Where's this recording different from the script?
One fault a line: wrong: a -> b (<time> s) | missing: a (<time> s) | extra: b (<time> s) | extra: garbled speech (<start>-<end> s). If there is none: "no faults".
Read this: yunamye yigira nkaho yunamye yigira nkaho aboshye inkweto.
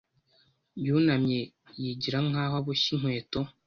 missing: yunamye yigira nkaho (2.5 s)